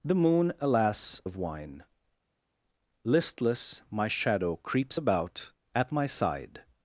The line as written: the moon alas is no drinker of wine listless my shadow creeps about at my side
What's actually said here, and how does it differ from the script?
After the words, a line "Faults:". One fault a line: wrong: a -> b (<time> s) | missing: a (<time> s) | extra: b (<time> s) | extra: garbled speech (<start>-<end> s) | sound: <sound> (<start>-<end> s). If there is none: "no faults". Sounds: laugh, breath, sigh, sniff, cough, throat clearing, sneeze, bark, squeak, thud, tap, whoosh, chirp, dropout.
the moon alas of wine listless my shadow creeps about at my side
Faults:
missing: is no drinker (1.2 s)